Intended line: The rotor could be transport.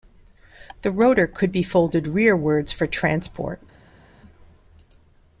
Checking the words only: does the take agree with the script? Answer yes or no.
no